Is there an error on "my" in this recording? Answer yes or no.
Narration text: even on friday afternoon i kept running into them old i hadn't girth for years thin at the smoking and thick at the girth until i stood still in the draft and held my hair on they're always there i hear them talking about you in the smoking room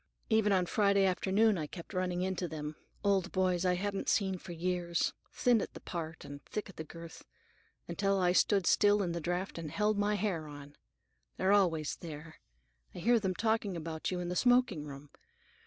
no